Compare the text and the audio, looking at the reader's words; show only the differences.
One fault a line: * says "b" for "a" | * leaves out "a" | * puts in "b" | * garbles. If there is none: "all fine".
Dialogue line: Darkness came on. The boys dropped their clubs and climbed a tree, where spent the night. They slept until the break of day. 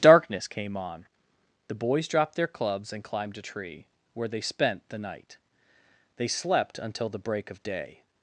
* puts in "they"